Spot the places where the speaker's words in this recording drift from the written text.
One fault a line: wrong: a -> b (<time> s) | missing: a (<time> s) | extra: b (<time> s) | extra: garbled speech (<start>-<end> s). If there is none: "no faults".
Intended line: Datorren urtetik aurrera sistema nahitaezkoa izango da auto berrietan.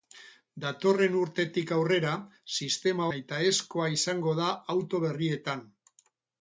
no faults